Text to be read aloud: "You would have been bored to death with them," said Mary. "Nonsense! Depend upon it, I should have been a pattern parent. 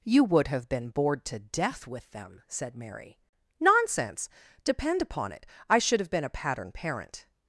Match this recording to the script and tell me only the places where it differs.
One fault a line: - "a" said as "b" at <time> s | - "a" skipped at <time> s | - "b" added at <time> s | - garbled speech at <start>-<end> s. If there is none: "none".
none